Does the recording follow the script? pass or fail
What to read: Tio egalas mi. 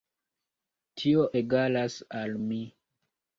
fail